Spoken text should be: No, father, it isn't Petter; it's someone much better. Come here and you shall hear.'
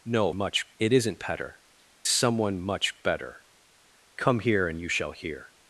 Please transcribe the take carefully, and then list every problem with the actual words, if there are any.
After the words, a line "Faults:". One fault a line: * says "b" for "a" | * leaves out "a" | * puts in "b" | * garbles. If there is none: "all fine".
No, much, it isn't Petter; someone much better. Come here and you shall hear.'
Faults:
* says "much" for "father"
* leaves out "it's"